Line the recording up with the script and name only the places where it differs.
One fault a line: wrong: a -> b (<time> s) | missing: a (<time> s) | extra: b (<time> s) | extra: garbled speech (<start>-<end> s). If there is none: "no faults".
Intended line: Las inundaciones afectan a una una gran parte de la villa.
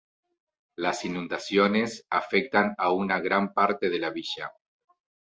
missing: una (3.2 s)